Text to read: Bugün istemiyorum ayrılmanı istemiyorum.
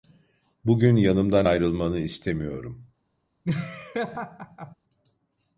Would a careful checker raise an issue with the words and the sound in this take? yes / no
yes